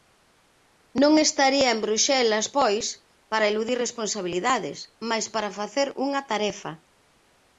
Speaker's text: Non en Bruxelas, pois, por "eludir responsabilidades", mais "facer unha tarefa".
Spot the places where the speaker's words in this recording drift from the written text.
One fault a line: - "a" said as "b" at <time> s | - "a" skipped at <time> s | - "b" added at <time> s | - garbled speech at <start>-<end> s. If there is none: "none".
- "estaría" added at 1.2 s
- "por" said as "para" at 3.3 s
- "para" added at 5.3 s